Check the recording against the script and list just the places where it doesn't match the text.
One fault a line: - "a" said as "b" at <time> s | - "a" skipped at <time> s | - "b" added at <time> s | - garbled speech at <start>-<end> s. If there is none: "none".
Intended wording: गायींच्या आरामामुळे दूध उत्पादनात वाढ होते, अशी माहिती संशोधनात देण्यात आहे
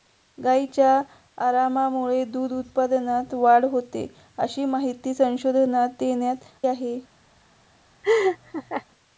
none